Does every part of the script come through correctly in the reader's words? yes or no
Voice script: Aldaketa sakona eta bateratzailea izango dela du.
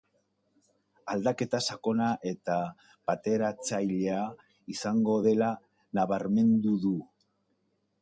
no